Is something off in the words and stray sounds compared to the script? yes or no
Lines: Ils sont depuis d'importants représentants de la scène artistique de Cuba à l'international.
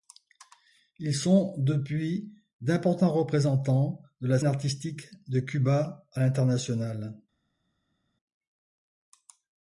yes